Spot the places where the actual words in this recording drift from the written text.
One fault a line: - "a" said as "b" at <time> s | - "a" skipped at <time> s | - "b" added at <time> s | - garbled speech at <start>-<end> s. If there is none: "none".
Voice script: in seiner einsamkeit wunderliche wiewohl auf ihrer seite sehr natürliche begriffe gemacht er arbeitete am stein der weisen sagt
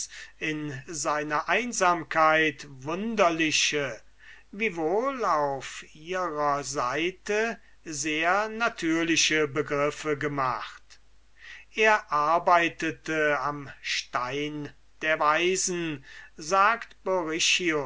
none